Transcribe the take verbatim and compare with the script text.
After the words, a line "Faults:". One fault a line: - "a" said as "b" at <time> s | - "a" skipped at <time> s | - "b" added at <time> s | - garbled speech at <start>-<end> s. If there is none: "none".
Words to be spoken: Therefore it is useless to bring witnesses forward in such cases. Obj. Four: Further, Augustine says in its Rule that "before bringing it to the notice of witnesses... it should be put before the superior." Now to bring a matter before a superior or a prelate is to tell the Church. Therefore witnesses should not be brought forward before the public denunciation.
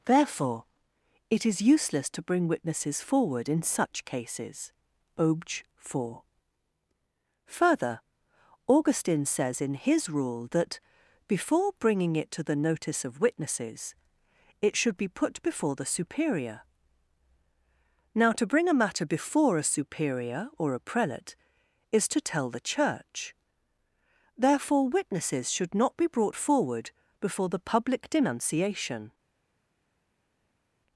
Therefore it is useless to bring witnesses forward in such cases. Obj. Four: Further, Augustine says in his Rule that "before bringing it to the notice of witnesses... it should be put before the superior." Now to bring a matter before a superior or a prelate is to tell the Church. Therefore witnesses should not be brought forward before the public denunciation.
Faults:
- "its" said as "his" at 9.8 s